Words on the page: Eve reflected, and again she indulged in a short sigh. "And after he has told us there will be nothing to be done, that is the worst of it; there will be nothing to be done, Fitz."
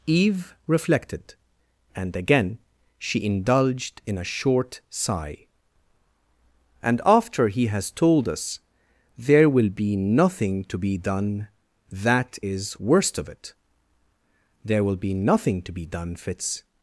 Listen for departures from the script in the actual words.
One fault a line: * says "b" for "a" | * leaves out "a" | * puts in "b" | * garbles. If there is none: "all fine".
* leaves out "the"